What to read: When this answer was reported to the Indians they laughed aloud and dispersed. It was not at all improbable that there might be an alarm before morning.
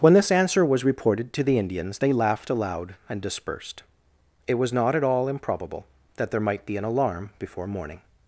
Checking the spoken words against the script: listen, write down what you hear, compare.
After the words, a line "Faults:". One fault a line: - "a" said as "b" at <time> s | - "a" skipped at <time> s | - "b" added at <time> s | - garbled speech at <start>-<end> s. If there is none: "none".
When this answer was reported to the Indians they laughed aloud and dispersed. It was not at all improbable that there might be an alarm before morning.
Faults:
none